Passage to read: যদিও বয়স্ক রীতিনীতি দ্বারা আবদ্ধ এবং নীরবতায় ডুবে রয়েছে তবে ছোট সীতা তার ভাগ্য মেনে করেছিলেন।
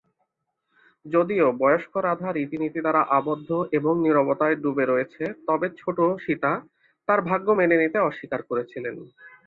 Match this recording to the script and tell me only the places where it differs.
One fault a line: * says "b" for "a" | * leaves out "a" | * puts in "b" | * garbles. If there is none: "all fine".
* puts in "রাধা"
* puts in "নিতে অস্বীকার"